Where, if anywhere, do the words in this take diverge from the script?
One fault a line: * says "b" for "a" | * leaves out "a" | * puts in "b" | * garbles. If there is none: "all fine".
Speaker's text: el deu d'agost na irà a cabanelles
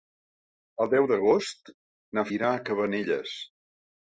all fine